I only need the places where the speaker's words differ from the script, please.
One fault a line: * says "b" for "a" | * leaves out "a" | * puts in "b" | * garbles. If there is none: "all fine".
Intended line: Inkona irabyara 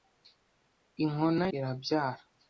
all fine